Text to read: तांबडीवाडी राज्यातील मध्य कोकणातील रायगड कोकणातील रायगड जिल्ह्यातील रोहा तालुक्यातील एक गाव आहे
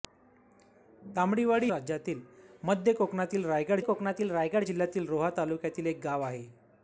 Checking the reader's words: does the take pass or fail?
pass